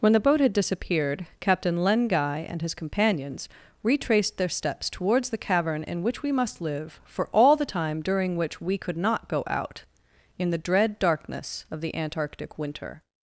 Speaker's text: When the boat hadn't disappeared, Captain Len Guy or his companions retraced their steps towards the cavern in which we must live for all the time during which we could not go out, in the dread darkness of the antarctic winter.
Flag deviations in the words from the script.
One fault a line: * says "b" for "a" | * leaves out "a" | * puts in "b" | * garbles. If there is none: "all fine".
* says "had" for "hadn't"
* says "and" for "or"